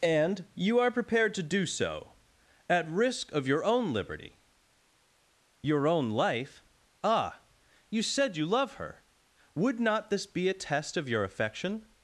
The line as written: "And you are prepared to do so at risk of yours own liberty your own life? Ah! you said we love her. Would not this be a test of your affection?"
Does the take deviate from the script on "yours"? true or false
true